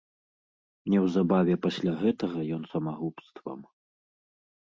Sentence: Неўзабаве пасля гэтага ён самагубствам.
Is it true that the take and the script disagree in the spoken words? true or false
false